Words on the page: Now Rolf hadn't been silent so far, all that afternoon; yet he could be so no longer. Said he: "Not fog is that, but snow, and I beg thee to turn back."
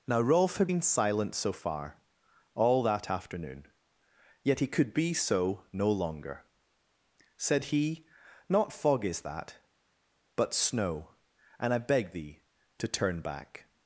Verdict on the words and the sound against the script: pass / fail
fail